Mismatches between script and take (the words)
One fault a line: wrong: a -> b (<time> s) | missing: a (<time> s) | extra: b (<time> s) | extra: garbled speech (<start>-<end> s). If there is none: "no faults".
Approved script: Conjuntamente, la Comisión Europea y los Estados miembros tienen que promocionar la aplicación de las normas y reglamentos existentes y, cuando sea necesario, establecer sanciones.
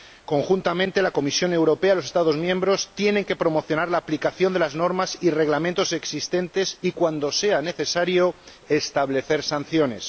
no faults